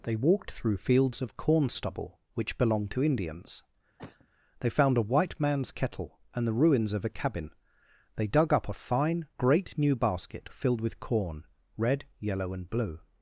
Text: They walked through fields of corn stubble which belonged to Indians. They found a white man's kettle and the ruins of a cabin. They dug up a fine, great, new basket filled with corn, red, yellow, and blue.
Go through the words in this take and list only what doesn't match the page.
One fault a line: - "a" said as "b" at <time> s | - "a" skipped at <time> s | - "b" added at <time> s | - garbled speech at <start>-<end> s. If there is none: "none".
none